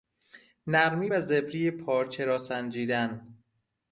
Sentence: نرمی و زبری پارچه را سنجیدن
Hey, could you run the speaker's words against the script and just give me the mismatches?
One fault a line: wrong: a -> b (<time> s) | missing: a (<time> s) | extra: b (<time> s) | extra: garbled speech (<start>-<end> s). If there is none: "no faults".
no faults